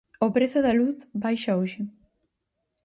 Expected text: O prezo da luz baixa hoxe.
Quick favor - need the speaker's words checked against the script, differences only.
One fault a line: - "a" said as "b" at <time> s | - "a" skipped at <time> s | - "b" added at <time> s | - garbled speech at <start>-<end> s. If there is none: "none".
none